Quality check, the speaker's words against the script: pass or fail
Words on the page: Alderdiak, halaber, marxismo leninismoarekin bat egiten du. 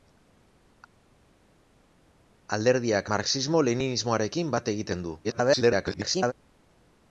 fail